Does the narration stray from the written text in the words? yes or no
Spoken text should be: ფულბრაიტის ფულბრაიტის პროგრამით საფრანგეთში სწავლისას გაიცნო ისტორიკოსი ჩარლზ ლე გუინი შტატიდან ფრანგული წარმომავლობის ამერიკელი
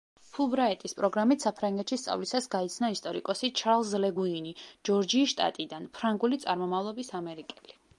yes